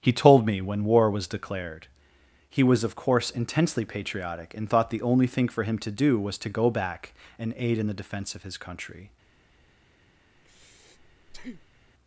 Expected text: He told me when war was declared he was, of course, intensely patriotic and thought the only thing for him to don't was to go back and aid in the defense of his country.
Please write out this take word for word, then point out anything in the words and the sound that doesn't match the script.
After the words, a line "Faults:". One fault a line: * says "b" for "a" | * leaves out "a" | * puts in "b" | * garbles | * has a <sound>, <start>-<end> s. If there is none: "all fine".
He told me when war was declared he was, of course, intensely patriotic and thought the only thing for him to do was to go back and aid in the defense of his country.
Faults:
* says "do" for "don't"
* has a breath, 10.4-11.9 s